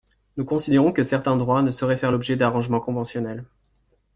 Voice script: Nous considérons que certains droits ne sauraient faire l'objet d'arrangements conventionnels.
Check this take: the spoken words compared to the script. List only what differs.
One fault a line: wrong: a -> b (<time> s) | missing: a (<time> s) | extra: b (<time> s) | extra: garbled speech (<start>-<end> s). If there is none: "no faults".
no faults